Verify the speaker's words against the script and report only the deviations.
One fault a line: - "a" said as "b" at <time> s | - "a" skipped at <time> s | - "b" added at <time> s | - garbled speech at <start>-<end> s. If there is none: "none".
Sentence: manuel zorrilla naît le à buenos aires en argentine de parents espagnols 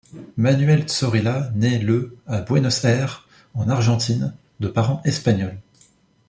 none